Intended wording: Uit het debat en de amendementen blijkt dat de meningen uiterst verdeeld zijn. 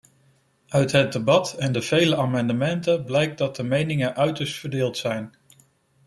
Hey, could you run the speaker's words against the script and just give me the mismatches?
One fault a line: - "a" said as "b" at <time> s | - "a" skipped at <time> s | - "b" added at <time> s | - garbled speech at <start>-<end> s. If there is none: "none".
- "vele" added at 1.8 s